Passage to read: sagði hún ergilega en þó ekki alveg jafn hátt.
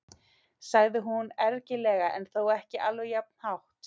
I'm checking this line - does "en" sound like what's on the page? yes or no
yes